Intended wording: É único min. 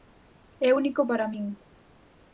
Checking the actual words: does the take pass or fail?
fail